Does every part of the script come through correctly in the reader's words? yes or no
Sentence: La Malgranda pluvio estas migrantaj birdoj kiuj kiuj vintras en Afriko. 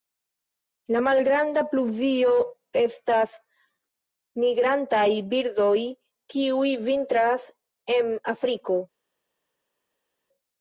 no